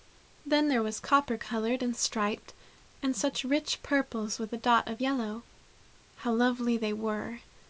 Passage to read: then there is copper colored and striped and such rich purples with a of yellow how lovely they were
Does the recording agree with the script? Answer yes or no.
no